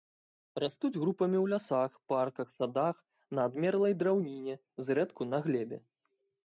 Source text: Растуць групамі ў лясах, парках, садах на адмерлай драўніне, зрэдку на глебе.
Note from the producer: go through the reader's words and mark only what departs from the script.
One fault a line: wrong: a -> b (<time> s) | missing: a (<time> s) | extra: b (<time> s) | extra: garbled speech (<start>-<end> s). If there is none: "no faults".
no faults